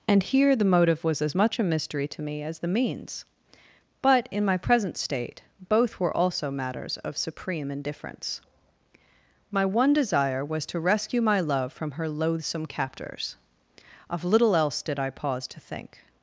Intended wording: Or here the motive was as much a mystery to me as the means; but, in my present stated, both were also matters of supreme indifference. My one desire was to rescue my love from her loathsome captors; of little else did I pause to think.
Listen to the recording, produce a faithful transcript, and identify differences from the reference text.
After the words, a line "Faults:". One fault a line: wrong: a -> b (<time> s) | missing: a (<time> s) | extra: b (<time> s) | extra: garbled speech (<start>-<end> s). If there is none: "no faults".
And here the motive was as much a mystery to me as the means; but, in my present state, both were also matters of supreme indifference. My one desire was to rescue my love from her loathsome captors; of little else did I pause to think.
Faults:
wrong: Or -> And (0.1 s)
wrong: stated -> state (5.0 s)